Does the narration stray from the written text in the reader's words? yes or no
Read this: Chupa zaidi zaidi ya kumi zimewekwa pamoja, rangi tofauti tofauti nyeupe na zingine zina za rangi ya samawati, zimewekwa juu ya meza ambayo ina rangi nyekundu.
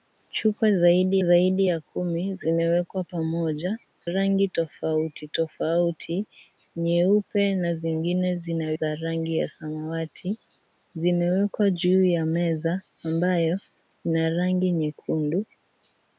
no